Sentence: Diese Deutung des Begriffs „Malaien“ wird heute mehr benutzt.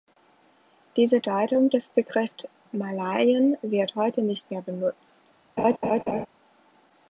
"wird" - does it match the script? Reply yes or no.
yes